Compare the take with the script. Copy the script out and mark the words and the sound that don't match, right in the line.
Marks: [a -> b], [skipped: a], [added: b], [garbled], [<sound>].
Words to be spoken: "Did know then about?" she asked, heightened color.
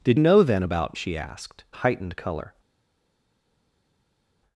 "Did know then about?" she asked, heightened color.